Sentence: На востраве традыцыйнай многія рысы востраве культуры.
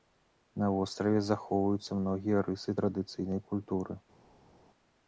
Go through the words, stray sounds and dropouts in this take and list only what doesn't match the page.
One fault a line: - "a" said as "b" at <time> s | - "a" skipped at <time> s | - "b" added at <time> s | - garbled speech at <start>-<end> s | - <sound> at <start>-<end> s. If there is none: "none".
- "традыцыйнай" said as "захоўваюцца" at 1.3 s
- "востраве" said as "традыцыйнай" at 2.8 s